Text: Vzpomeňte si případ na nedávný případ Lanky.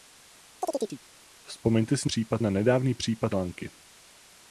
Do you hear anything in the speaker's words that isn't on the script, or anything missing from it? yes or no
no